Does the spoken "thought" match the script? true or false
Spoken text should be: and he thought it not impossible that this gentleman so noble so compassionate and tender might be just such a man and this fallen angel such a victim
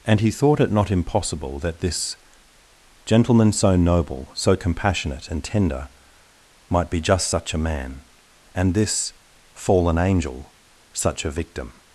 true